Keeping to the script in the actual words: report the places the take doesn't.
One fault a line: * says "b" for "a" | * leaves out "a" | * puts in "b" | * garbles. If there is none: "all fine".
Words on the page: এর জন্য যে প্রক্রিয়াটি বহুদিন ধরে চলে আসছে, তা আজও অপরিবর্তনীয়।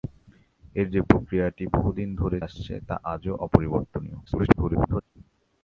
* leaves out "জন্য"
* leaves out "চলে"
* garbles